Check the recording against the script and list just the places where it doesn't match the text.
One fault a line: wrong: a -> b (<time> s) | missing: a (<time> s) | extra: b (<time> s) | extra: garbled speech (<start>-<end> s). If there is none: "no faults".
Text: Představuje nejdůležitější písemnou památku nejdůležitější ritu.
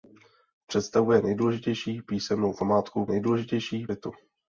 no faults